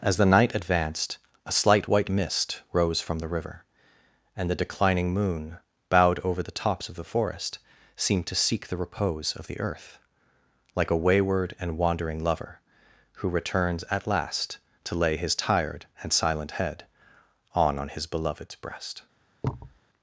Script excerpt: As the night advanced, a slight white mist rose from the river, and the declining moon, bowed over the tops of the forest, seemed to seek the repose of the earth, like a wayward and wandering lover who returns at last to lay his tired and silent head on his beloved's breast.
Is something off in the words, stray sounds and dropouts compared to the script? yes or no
yes